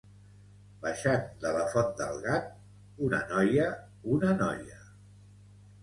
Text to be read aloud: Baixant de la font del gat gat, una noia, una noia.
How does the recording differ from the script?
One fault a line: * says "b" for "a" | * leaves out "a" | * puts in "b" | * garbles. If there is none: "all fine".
* leaves out "gat"